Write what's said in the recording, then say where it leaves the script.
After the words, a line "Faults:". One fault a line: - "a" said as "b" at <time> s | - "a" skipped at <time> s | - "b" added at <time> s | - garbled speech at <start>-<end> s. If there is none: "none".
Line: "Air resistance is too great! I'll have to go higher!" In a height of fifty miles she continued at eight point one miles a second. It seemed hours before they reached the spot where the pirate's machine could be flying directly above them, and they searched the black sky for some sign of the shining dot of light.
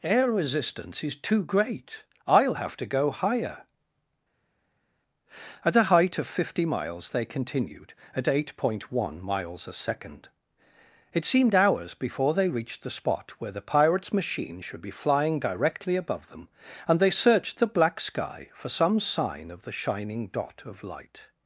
"Air resistance is too great! I'll have to go higher!" At a height of fifty miles they continued at eight point one miles a second. It seemed hours before they reached the spot where the pirate's machine should be flying directly above them, and they searched the black sky for some sign of the shining dot of light.
Faults:
- "In" said as "At" at 5.6 s
- "she" said as "they" at 7.1 s
- "could" said as "should" at 14.6 s